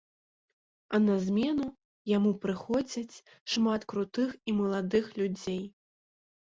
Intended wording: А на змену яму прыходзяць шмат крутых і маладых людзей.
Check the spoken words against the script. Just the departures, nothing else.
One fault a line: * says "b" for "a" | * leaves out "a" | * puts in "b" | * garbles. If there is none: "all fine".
all fine